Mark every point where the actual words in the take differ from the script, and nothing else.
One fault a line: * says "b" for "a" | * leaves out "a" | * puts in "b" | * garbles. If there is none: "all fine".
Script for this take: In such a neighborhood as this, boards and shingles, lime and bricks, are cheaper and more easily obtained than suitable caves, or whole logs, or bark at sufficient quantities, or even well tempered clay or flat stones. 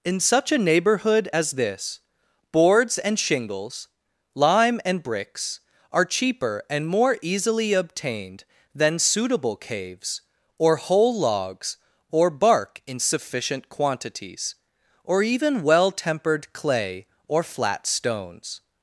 * says "in" for "at"